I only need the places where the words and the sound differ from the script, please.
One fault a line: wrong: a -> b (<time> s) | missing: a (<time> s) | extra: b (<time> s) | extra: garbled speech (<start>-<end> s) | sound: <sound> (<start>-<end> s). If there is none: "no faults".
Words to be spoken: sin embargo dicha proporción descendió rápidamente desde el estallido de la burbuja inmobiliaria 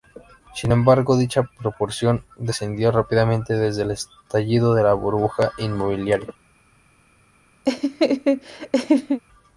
sound: laugh (7.7-9.2 s)